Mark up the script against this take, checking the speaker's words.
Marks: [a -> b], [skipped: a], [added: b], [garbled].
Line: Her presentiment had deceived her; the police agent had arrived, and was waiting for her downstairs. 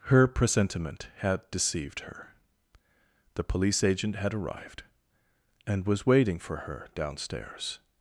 Her presentiment had deceived her; the police agent had arrived, and was waiting for her downstairs.